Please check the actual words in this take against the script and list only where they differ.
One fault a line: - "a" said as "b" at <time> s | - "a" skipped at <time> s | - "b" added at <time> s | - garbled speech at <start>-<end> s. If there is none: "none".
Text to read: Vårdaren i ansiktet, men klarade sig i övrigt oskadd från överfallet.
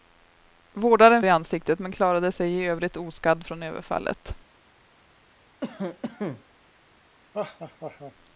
none